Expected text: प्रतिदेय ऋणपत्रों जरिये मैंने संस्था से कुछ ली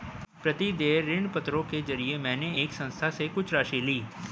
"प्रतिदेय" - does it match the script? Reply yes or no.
yes